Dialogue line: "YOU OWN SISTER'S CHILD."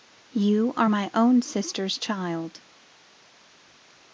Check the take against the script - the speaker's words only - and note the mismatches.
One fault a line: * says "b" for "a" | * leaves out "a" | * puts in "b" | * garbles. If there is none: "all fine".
* puts in "ARE MY"